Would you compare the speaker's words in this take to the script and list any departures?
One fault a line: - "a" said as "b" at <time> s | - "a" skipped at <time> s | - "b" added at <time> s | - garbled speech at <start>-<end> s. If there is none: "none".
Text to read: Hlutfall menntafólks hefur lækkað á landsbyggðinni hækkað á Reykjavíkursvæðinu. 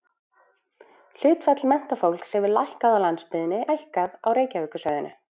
none